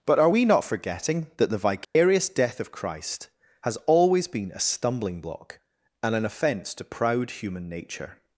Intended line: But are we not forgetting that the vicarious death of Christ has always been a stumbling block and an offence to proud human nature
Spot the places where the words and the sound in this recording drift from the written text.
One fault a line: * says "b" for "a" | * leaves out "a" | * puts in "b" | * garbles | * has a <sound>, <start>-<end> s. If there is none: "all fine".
* has a dropout, 1.8-2.0 s